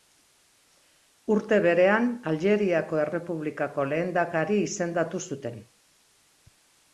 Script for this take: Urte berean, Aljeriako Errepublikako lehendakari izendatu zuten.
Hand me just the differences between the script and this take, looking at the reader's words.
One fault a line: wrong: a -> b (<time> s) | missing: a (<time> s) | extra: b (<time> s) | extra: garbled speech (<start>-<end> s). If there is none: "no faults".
no faults